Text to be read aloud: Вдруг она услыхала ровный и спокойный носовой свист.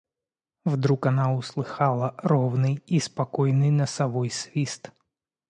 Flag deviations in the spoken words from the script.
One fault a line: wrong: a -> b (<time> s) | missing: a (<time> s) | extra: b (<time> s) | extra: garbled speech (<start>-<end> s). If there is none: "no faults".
no faults